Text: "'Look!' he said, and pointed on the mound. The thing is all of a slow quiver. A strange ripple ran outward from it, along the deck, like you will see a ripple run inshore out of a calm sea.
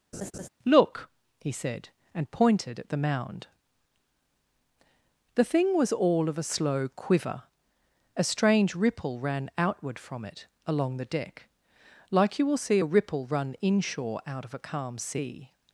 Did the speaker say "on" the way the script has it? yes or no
no